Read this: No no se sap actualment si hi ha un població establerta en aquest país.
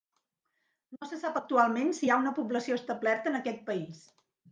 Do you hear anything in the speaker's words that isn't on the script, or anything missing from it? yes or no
yes